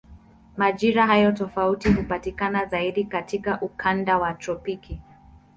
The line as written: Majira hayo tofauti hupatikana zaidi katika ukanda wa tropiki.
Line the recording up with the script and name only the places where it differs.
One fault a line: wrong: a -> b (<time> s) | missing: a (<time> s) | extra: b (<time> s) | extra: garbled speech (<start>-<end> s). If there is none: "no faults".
no faults